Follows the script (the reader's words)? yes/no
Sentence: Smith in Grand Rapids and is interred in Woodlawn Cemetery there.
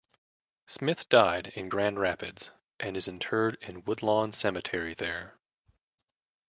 no